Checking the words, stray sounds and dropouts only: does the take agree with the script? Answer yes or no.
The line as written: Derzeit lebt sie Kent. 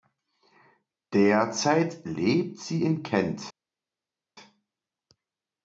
no